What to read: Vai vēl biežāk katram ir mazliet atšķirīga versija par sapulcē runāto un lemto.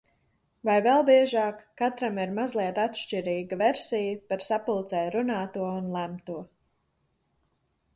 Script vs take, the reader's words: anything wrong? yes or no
no